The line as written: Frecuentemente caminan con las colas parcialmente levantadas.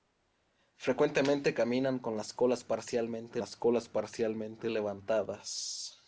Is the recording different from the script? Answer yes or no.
yes